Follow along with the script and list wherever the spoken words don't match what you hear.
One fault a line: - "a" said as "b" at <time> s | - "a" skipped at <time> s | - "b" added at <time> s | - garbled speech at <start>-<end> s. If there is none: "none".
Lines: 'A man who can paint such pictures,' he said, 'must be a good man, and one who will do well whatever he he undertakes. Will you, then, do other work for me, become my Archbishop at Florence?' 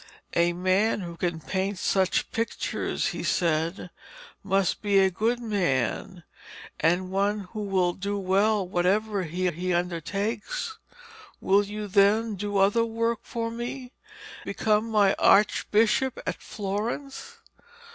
none